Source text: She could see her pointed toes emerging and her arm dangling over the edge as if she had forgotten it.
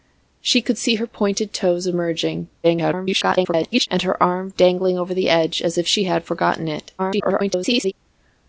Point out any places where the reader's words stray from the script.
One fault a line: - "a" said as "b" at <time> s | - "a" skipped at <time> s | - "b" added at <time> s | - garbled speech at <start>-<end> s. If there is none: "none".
- garbled speech at 2.6-3.9 s
- garbled speech at 7.0-7.9 s